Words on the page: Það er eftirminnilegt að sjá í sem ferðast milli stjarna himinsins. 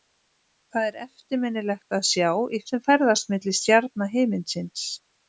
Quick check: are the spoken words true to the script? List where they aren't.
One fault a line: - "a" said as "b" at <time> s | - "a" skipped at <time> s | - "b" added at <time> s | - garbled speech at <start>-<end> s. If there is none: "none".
none